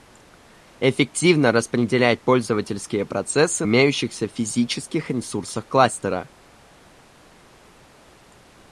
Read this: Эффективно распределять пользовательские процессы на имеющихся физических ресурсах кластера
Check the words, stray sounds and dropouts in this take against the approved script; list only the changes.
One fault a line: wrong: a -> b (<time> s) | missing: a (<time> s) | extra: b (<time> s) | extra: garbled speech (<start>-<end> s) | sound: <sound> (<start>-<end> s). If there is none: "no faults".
missing: на (3.7 s)